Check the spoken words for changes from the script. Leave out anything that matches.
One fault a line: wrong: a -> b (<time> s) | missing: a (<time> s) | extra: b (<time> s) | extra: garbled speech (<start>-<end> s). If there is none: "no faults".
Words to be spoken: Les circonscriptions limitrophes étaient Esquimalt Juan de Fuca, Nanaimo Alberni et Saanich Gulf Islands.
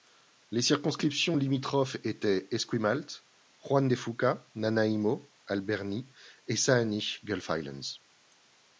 no faults